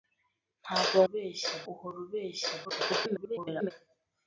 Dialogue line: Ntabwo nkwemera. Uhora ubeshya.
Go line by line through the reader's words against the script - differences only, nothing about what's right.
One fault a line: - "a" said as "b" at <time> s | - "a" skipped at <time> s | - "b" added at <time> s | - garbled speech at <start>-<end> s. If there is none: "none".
- "nkwemera" said as "ubeshya" at 1.1 s
- garbled speech at 2.6-3.7 s